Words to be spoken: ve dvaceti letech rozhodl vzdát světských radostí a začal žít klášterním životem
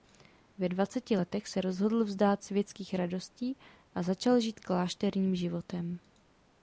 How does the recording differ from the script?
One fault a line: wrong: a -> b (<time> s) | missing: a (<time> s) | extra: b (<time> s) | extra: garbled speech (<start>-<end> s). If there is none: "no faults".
extra: se (1.5 s)